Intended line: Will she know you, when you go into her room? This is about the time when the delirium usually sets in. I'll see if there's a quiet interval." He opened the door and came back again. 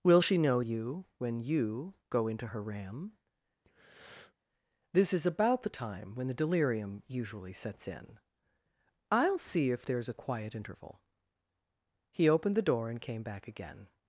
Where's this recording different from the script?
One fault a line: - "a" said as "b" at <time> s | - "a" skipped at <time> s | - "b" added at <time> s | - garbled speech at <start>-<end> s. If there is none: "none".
- "room" said as "ram" at 2.6 s